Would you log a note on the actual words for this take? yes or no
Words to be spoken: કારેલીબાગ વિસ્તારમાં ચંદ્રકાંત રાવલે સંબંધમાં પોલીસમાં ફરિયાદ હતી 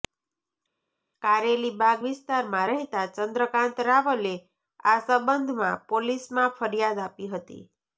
yes